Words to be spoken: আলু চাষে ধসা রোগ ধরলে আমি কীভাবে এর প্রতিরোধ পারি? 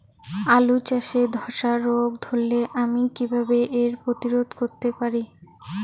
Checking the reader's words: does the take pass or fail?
fail